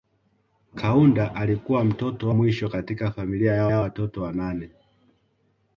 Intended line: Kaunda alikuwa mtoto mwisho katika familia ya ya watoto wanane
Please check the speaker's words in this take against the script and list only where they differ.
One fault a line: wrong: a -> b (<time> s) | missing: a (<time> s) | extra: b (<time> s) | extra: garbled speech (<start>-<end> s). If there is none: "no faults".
no faults